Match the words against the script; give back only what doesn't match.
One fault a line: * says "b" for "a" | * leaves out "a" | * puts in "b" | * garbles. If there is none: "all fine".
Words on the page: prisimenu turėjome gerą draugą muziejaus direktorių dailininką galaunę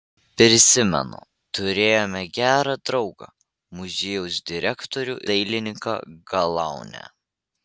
all fine